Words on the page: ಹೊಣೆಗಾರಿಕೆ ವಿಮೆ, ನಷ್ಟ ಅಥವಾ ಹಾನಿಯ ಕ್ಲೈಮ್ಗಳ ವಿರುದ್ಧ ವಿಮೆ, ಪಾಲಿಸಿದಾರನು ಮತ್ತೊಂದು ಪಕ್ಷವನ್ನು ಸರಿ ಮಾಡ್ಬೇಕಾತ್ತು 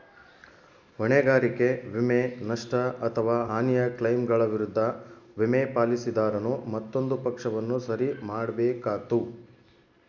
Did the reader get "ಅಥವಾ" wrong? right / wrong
right